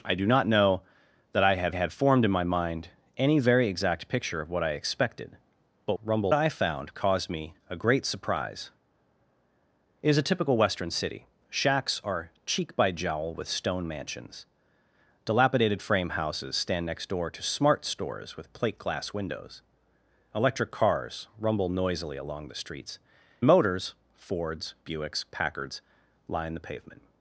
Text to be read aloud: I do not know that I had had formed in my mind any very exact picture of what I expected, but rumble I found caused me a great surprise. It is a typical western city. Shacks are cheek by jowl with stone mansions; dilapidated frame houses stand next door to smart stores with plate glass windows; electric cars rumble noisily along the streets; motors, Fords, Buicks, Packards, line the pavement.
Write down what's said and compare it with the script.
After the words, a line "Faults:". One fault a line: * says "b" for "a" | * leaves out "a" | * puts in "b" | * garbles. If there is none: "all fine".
I do not know that I had had formed in my mind any very exact picture of what I expected, but rumble I found caused me a great surprise. It is a typical western city. Shacks are cheek by jowl with stone mansions; dilapidated frame houses stand next door to smart stores with plate glass windows; electric cars rumble noisily along the streets; motors, Fords, Buicks, Packards, line the pavement.
Faults:
all fine